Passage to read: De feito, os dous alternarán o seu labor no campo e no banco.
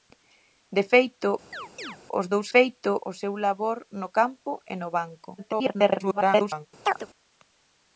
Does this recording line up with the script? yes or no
no